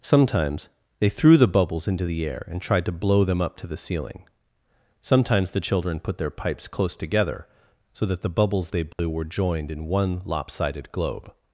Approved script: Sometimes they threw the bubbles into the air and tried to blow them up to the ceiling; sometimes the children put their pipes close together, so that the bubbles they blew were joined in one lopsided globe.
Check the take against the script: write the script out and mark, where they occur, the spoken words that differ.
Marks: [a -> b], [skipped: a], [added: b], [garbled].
Sometimes they threw the bubbles into the air and tried to blow them up to the ceiling; sometimes the children put their pipes close together, so that the bubbles they blew were joined in one lopsided globe.